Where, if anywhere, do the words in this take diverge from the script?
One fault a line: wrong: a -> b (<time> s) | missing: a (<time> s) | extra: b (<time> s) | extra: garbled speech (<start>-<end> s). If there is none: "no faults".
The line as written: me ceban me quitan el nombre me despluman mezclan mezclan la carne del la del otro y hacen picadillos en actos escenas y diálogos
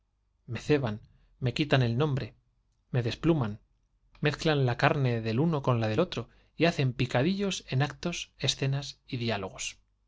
missing: mezclan (4.7 s)
extra: uno con (5.4 s)